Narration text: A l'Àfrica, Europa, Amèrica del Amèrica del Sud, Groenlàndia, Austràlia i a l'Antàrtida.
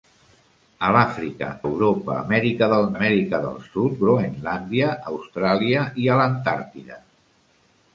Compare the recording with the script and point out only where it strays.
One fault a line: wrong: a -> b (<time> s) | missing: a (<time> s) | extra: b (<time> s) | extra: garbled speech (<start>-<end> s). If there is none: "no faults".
no faults